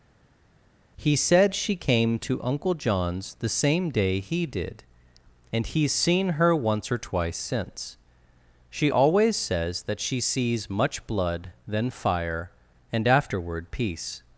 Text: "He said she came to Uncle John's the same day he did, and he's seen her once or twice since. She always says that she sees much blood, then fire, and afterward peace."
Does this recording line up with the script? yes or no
yes